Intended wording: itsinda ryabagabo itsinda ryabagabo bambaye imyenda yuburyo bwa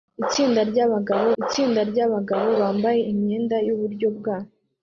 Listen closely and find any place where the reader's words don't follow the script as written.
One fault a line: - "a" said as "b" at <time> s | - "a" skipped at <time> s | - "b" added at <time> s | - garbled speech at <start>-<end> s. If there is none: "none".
none